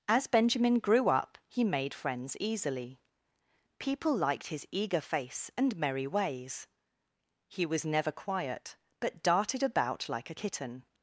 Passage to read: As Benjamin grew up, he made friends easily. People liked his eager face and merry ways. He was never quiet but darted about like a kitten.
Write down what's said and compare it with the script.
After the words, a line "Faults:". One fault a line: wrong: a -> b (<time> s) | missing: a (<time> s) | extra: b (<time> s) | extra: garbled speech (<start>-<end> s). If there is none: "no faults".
As Benjamin grew up, he made friends easily. People liked his eager face and merry ways. He was never quiet but darted about like a kitten.
Faults:
no faults